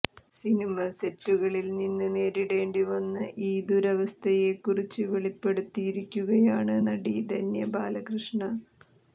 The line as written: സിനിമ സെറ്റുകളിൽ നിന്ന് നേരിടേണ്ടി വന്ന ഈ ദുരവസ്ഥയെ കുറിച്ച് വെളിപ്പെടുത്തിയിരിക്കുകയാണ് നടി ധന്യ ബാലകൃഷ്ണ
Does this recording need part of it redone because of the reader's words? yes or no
no